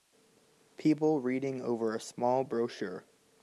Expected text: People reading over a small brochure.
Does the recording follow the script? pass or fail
pass